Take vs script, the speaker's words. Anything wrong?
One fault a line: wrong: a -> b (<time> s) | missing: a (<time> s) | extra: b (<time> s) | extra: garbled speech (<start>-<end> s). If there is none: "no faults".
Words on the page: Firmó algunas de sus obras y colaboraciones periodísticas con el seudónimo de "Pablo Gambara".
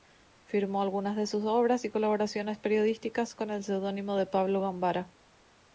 no faults